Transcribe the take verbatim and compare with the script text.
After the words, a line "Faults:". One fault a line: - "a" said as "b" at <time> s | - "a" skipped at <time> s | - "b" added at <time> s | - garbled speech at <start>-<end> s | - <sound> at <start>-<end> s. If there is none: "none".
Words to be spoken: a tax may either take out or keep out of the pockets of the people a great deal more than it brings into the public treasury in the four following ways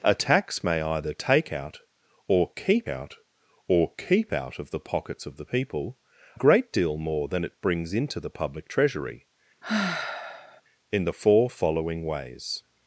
a tax may either take out or keep out or keep out of the pockets of the people great deal more than it brings into the public treasury in the four following ways
Faults:
- "or keep out" added at 3.7 s
- "a" skipped at 6.0 s
- sigh at 9.6-10.6 s